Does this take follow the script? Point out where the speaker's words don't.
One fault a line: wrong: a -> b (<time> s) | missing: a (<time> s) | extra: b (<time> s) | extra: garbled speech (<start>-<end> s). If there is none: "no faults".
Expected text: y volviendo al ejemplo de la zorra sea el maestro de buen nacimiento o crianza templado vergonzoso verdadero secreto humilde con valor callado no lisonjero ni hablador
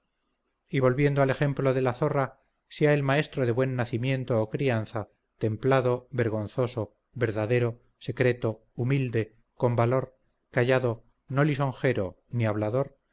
no faults